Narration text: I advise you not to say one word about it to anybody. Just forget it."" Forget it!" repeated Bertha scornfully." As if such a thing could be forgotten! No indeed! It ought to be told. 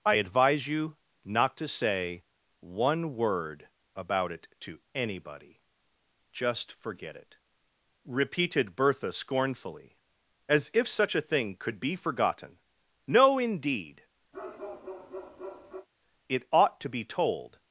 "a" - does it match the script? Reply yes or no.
yes